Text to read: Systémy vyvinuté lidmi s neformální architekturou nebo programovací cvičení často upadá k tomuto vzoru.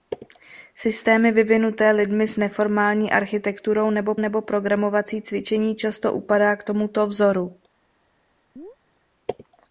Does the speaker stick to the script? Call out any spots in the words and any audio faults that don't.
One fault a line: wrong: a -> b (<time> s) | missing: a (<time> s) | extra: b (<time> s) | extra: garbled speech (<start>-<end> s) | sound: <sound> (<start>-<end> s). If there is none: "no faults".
extra: nebo (4.2 s)
sound: chirp (8.6-8.8 s)